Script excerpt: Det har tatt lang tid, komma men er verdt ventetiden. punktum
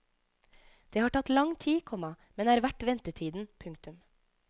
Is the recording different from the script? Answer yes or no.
no